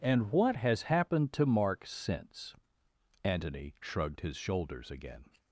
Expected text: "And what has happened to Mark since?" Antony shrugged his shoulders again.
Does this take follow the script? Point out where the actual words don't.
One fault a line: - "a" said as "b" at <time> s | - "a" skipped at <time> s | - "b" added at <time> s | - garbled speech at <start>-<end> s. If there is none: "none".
none